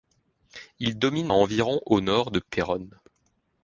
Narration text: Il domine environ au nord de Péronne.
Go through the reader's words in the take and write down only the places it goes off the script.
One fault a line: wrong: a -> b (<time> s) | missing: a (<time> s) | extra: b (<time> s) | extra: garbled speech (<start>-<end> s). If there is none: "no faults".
no faults